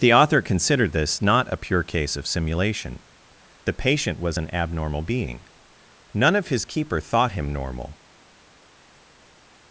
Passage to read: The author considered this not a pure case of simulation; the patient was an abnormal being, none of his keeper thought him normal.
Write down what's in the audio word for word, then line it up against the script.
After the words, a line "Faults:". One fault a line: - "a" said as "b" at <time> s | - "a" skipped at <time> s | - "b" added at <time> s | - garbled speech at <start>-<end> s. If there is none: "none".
The author considered this not a pure case of simulation; the patient was an abnormal being, none of his keeper thought him normal.
Faults:
none